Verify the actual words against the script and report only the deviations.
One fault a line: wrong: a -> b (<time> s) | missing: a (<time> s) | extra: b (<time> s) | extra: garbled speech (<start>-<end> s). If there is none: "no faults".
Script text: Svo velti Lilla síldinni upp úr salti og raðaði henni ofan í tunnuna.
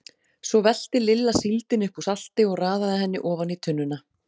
no faults